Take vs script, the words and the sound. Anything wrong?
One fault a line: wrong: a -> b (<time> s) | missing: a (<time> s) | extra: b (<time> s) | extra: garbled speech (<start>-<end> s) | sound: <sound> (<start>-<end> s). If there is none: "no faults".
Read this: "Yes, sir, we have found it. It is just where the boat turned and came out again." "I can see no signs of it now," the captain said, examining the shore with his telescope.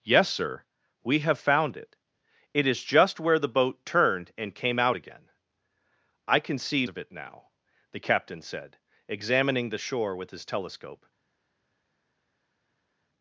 missing: no signs (6.9 s)